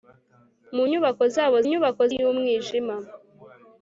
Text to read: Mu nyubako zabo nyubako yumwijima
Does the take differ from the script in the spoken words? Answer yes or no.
no